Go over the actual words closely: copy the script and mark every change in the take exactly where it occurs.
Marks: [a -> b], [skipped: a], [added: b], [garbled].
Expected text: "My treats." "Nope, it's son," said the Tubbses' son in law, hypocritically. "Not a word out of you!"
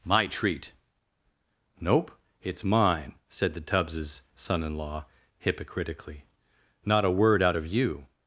"My [treats." -> treat] "Nope, it's [son," -> mine] said the Tubbses' son in law, hypocritically. "Not a word out of you!"